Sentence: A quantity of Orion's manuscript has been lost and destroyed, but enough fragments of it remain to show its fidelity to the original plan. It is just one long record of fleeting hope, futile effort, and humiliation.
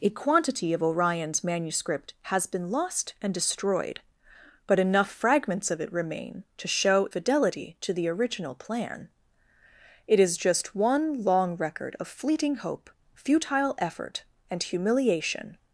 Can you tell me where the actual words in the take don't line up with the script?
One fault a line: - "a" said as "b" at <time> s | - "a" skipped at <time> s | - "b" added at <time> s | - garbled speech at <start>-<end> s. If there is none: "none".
- "its" skipped at 7.1 s